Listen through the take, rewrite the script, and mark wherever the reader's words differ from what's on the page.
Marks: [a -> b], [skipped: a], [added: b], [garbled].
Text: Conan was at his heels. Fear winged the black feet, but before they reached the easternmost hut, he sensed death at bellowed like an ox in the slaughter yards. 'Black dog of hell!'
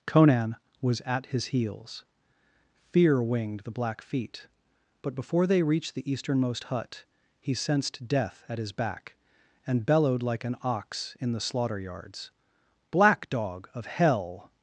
Conan was at his heels. Fear winged the black feet, but before they reached the easternmost hut, he sensed death at [added: his back and] bellowed like an ox in the slaughter yards. 'Black dog of hell!'